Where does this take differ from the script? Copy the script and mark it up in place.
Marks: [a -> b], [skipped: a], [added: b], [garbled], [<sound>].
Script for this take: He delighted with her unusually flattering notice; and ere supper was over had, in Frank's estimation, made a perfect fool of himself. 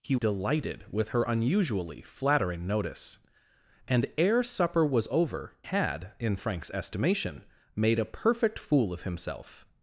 He delighted with her unusually flattering notice; and ere supper was over had, in Frank's estimation, made a perfect fool of himself.